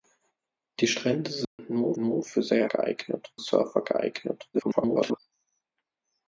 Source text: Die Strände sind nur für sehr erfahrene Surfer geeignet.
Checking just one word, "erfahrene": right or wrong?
wrong